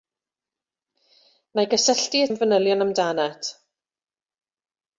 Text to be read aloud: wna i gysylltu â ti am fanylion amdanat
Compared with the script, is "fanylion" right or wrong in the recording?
right